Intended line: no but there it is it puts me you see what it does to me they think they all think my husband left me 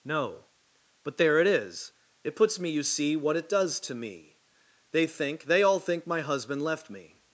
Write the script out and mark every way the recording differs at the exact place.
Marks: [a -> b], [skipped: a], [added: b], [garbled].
no but there it is it puts me you see what it does to me they think they all think my husband left me